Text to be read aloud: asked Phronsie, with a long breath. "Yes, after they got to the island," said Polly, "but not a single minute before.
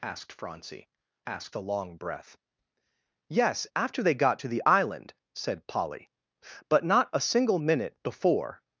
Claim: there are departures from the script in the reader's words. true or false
true